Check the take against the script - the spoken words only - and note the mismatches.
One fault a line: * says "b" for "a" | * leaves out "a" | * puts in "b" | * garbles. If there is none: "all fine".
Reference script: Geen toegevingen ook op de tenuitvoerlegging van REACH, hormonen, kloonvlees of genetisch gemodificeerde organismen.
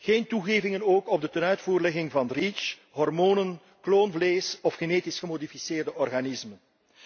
all fine